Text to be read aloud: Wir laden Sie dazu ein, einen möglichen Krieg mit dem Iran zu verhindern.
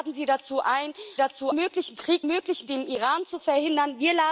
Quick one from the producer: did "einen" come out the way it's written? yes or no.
no